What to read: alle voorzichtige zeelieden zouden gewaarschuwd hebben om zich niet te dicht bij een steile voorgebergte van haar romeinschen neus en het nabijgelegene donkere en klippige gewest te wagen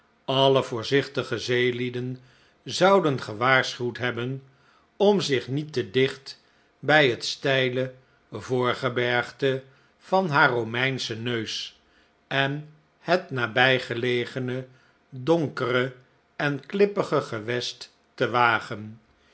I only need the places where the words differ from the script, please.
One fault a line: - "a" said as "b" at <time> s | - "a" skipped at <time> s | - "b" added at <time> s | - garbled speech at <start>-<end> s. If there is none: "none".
- "een" said as "het" at 7.1 s